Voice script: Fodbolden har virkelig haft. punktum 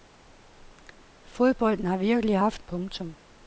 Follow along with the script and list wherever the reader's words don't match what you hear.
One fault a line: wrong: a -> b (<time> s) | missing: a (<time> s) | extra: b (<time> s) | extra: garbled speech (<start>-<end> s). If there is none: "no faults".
no faults